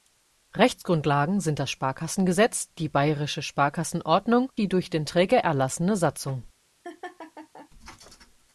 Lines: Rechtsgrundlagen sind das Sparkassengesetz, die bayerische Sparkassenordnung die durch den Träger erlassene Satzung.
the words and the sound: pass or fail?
fail